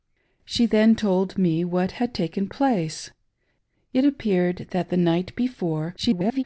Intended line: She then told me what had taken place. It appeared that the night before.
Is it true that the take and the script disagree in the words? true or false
true